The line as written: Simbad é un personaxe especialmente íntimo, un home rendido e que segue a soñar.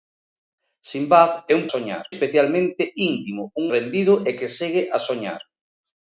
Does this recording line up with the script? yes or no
no